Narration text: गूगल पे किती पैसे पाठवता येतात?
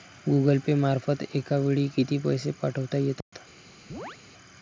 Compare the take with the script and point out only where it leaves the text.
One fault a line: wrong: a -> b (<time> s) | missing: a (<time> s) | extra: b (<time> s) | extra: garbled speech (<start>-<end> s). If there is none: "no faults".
extra: मार्फत एका वेळी (0.8 s)